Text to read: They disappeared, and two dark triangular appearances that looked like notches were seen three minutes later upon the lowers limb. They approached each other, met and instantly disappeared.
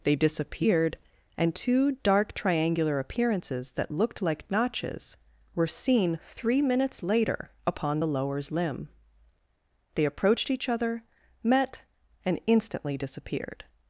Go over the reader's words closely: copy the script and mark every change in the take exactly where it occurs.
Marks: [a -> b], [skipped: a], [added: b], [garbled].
They disappeared, and two dark triangular appearances that looked like notches were seen three minutes later upon the lowers limb. They approached each other, met and instantly disappeared.